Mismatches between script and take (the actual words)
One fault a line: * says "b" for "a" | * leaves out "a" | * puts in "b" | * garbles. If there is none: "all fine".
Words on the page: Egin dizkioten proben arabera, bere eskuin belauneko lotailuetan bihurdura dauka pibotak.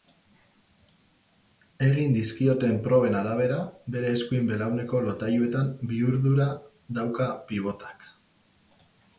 all fine